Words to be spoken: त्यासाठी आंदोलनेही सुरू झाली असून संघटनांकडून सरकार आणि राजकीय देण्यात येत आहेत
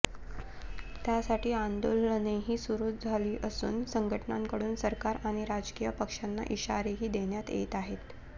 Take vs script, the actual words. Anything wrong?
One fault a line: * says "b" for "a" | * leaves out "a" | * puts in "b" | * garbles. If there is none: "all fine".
* puts in "पक्षांना इशारेही"